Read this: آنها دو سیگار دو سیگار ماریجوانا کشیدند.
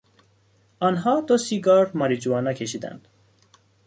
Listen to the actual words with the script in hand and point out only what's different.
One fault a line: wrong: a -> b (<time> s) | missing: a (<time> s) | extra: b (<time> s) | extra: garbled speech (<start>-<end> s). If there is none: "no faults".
missing: دو سیگار (1.9 s)